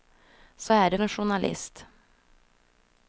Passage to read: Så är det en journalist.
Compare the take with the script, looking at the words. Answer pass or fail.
pass